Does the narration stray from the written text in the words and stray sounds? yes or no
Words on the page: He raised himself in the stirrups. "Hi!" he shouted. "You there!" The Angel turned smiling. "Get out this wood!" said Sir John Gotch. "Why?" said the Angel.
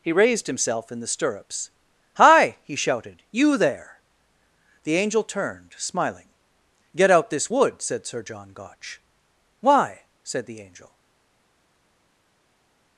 no